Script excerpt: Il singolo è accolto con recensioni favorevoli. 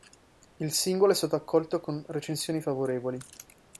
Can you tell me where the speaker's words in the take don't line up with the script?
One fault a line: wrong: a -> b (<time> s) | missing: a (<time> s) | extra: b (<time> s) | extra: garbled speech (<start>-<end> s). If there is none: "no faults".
extra: stato (1.1 s)